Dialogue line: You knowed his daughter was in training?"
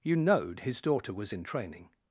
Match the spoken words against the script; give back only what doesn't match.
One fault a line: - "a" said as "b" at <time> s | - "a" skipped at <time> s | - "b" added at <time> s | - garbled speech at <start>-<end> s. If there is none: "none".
none